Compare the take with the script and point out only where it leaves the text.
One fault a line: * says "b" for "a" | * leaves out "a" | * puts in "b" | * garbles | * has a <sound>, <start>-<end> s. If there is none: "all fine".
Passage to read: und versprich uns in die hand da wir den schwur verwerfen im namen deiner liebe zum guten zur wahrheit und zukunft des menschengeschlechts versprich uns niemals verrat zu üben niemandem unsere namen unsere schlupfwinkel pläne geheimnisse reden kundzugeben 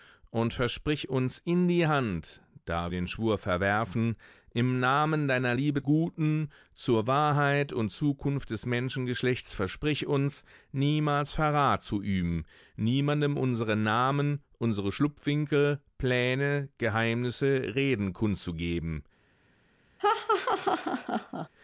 * leaves out "wir"
* leaves out "zum"
* has a laugh, 20.0-21.5 s